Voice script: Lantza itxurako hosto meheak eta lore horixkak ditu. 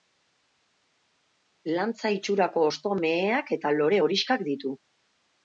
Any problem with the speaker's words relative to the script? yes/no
no